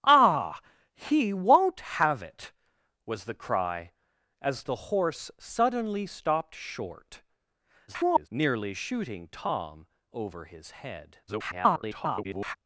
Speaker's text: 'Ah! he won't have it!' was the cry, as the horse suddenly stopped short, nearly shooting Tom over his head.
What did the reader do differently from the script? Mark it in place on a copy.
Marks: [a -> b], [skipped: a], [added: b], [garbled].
'Ah! he won't have it!' was the cry, as the horse suddenly stopped short, [garbled] nearly shooting Tom over his head. [garbled]